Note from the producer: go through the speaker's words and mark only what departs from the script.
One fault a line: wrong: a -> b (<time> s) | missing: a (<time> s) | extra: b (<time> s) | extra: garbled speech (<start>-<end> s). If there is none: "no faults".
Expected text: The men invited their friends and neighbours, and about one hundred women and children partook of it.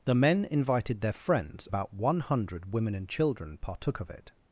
missing: and neighbours and (1.7 s)